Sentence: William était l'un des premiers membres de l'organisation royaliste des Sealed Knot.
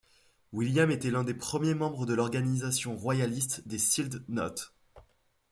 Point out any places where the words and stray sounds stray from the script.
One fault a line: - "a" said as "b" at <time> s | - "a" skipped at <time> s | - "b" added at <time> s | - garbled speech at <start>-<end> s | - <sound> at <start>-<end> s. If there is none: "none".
none